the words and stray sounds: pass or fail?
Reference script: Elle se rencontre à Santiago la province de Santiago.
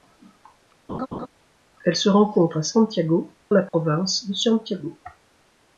fail